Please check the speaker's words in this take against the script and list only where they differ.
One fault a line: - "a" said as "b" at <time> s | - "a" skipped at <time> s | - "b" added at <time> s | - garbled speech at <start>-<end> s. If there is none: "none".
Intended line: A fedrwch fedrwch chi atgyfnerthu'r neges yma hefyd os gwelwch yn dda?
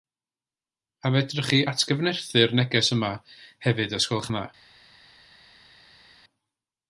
- "fedrwch" skipped at 1.5 s